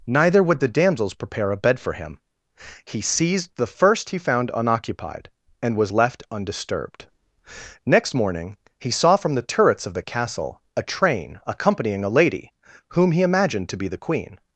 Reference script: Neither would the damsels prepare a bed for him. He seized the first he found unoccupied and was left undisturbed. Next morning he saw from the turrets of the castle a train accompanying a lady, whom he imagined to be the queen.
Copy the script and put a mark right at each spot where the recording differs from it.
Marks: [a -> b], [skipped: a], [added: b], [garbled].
Neither would the damsels prepare a bed for him. He seized the first he found unoccupied and was left undisturbed. Next morning he saw from the turrets of the castle a train accompanying a lady, whom he imagined to be the queen.